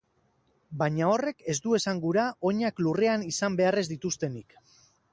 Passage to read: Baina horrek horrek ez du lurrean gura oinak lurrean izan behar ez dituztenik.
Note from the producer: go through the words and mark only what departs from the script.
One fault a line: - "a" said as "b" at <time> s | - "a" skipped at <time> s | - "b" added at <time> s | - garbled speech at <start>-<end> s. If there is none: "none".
- "horrek" skipped at 1.4 s
- "lurrean" said as "esan" at 1.8 s